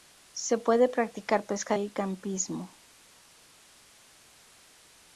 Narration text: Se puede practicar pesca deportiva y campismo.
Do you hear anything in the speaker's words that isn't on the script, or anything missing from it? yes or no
yes